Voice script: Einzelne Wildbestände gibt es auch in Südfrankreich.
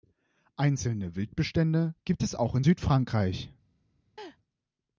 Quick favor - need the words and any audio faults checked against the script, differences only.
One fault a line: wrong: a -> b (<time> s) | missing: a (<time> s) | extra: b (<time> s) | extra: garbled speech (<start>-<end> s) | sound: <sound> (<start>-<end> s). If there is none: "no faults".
sound: laugh (4.2-4.4 s)